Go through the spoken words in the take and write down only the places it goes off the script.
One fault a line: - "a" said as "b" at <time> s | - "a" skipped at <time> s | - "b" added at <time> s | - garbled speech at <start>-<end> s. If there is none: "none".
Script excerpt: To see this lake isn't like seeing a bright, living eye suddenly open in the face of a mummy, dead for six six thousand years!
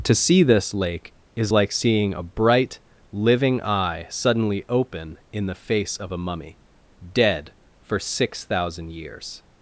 - "isn't" said as "is" at 1.4 s
- "six" skipped at 8.4 s